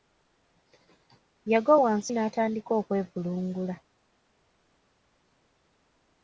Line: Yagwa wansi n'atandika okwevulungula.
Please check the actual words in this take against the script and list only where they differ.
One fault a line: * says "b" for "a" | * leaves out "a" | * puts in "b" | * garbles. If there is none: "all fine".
all fine